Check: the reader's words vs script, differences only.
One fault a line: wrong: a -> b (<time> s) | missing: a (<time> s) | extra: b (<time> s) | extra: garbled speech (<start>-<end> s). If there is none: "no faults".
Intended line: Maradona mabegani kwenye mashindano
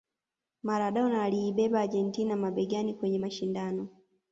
extra: aliibeba Argentina (1.2 s)